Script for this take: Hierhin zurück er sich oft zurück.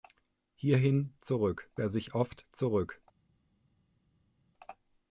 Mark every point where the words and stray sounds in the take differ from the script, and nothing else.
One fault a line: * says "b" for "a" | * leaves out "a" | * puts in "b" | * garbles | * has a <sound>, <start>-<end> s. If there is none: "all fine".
all fine